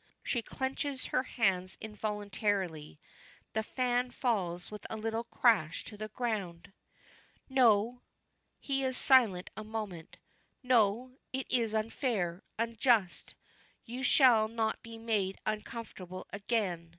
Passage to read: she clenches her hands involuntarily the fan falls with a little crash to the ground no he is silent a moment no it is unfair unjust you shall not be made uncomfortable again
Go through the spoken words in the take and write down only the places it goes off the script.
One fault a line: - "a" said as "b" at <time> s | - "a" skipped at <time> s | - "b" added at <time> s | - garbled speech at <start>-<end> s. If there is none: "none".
none